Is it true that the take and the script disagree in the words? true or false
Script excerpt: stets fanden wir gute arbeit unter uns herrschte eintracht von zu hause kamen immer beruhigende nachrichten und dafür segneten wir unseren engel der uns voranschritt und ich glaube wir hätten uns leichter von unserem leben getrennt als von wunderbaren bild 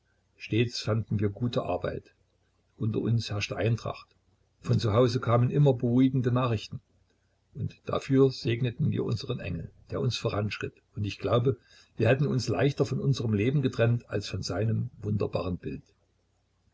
true